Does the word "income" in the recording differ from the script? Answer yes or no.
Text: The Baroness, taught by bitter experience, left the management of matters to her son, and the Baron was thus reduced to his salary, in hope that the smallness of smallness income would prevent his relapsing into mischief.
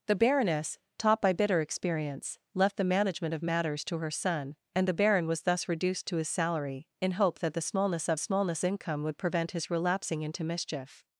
no